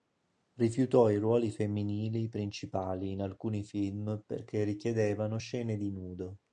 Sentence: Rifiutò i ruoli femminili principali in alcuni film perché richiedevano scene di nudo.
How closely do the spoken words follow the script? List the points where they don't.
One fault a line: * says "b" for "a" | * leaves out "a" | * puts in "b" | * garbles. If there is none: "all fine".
all fine